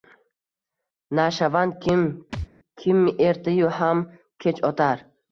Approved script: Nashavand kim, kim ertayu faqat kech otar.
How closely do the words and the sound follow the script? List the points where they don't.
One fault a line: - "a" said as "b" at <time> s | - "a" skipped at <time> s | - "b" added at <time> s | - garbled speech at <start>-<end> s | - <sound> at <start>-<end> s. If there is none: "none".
- thud at 2.3-2.5 s
- "faqat" said as "ham" at 3.8 s